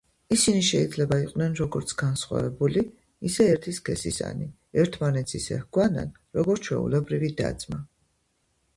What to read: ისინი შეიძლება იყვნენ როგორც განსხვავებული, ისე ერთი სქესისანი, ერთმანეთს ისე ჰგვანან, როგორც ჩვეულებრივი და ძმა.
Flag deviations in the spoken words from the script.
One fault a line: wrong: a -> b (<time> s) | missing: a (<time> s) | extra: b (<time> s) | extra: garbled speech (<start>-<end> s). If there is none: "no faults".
no faults